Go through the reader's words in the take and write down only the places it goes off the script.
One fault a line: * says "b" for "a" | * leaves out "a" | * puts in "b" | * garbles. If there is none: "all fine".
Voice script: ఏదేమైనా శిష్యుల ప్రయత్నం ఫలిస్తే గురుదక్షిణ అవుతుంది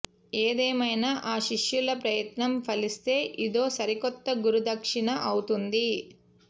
* puts in "ఆ"
* puts in "ఇదో సరికొత్త"